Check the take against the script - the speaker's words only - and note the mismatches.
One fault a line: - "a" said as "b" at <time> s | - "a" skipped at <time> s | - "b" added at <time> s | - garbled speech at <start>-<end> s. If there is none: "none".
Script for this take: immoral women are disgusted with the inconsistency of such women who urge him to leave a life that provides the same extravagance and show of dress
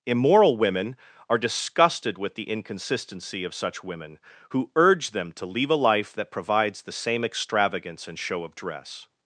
- "him" said as "them" at 5.1 s